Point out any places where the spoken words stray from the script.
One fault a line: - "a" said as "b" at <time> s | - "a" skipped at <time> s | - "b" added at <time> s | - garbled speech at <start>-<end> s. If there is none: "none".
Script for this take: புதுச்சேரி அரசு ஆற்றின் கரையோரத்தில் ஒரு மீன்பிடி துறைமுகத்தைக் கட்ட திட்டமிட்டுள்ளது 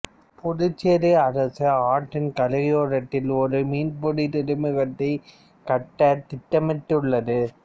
none